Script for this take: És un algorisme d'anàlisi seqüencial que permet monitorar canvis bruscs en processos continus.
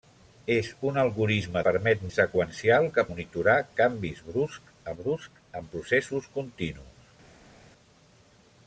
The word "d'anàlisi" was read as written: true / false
false